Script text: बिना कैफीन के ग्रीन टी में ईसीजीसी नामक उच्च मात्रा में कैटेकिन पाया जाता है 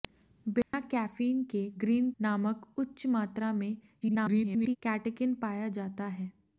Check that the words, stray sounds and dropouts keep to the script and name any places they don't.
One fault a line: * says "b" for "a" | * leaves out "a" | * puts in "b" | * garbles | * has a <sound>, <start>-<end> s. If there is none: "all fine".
* has a dropout, 0.6-0.7 s
* leaves out "टी में ईसीजीसी"
* garbles